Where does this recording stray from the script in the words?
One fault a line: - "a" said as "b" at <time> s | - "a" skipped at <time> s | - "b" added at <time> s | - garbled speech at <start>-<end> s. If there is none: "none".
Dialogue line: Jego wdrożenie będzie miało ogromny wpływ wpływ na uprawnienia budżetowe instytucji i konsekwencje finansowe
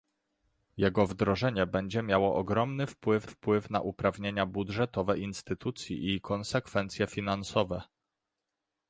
none